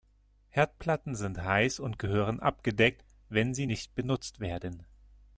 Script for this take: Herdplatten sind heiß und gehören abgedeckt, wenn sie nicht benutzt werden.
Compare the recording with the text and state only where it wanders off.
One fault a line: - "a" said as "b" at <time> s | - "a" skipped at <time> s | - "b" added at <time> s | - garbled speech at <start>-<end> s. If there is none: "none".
none